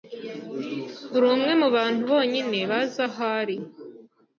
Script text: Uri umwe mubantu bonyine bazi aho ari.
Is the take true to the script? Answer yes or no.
yes